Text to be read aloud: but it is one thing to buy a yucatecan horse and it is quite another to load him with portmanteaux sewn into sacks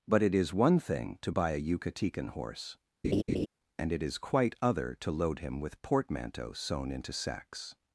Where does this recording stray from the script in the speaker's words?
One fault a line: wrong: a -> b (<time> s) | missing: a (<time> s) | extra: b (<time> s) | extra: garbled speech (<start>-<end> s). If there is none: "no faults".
wrong: another -> other (4.6 s)